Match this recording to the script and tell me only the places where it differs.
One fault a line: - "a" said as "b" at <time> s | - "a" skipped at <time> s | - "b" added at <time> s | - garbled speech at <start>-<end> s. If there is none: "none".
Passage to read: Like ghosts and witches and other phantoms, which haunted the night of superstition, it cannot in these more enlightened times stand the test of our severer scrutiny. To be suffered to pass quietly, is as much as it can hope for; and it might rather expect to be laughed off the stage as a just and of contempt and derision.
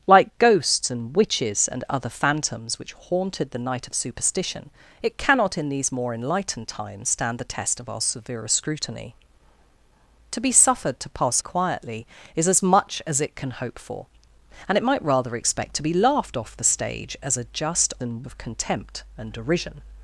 none